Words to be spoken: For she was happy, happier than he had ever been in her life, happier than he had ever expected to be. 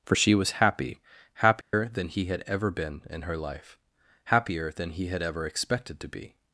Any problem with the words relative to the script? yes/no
no